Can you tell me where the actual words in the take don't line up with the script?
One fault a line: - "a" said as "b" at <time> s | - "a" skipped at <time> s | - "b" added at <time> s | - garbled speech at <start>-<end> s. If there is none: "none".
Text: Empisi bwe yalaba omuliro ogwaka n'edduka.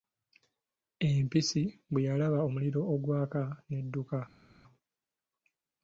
none